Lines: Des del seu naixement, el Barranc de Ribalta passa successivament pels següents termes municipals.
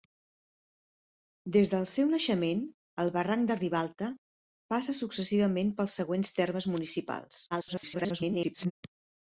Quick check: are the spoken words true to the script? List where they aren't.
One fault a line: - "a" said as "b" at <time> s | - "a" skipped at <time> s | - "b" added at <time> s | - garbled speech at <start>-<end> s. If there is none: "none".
- garbled speech at 7.5-8.7 s